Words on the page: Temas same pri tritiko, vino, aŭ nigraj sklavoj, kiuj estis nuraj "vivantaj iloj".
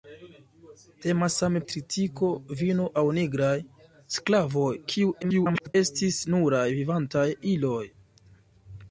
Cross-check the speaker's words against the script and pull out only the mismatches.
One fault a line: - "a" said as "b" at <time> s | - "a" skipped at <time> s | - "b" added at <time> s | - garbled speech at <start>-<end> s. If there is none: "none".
- "pri" skipped at 1.6 s
- garbled speech at 5.2-5.7 s